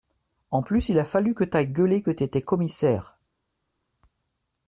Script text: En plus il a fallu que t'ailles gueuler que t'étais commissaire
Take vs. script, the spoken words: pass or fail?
pass